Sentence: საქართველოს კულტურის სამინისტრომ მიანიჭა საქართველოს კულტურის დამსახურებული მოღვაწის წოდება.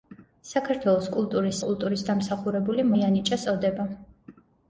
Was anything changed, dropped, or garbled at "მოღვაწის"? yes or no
yes